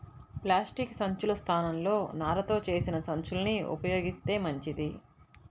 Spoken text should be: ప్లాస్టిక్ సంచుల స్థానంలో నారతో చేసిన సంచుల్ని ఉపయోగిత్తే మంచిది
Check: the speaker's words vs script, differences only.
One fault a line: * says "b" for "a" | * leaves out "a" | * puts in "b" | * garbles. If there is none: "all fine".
all fine